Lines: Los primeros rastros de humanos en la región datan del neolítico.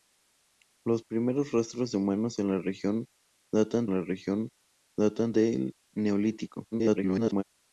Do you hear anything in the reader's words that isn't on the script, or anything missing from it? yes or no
yes